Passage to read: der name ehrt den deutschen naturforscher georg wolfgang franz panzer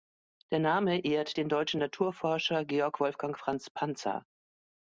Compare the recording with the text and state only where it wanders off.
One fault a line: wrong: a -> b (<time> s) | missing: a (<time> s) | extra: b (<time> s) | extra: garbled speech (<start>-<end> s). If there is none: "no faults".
no faults